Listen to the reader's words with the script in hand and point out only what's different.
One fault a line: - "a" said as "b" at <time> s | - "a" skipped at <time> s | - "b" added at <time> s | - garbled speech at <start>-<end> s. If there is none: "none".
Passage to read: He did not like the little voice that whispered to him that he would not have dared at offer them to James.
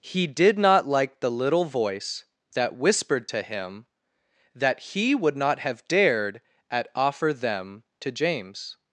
none